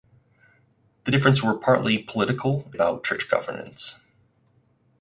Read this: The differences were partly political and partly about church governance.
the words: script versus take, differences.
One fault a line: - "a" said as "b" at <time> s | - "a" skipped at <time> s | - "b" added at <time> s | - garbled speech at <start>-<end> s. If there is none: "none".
- "and partly" skipped at 2.7 s